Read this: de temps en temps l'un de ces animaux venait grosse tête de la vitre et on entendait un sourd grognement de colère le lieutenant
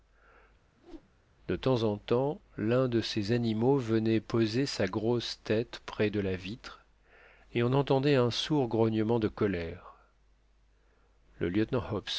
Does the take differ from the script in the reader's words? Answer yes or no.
yes